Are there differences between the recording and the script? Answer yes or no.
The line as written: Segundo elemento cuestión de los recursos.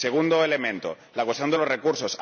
yes